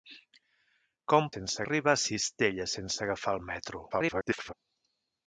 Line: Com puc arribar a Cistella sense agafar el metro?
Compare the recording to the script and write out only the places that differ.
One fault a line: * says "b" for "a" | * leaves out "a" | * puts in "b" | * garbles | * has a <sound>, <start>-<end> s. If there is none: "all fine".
* says "sense" for "puc"
* garbles